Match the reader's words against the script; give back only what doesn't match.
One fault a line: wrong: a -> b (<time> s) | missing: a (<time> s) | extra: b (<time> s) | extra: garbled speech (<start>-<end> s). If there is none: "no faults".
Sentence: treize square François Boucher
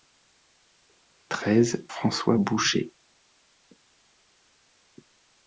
missing: square (1.9 s)